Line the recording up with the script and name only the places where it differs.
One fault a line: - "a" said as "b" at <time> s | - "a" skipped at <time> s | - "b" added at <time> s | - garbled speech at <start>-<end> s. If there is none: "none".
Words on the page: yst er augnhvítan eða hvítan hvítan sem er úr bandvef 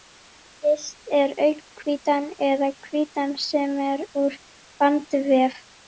- "hvítan" skipped at 3.4 s